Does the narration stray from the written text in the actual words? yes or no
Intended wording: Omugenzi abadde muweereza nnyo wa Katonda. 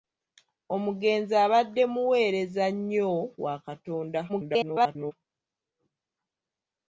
yes